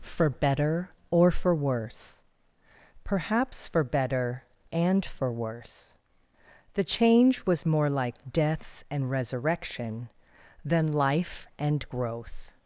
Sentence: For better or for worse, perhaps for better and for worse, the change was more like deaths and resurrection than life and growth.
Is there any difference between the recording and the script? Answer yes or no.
no